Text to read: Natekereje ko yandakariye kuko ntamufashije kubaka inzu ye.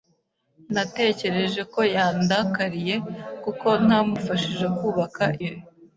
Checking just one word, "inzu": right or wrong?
wrong